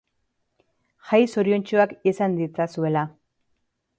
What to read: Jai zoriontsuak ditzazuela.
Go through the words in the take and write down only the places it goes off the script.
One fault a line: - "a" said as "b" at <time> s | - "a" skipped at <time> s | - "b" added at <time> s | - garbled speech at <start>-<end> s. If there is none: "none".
- "izan" added at 2.1 s